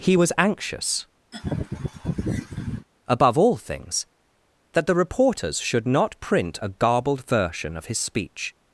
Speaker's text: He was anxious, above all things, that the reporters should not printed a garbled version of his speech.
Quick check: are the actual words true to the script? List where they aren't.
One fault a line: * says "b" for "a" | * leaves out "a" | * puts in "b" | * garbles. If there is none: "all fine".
* says "print" for "printed"